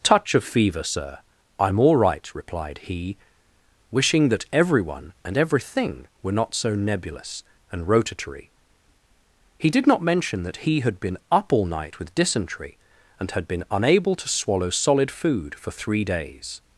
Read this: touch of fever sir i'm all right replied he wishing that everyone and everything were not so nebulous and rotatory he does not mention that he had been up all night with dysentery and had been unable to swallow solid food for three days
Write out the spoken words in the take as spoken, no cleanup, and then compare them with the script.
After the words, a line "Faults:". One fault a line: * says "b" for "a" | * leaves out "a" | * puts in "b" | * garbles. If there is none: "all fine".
touch of fever sir i'm all right replied he wishing that everyone and everything were not so nebulous and rotatory he did not mention that he had been up all night with dysentery and had been unable to swallow solid food for three days
Faults:
* says "did" for "does"